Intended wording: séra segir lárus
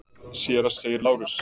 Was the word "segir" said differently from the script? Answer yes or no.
no